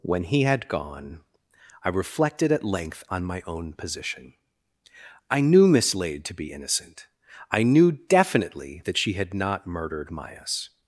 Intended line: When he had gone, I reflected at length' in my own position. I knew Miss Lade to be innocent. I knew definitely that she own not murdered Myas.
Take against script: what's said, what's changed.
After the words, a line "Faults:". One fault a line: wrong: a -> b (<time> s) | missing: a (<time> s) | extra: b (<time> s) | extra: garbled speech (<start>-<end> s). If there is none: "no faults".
When he had gone, I reflected at length' on my own position. I knew Miss Lade to be innocent. I knew definitely that she had not murdered Myas.
Faults:
wrong: in -> on (3.1 s)
wrong: own -> had (9.1 s)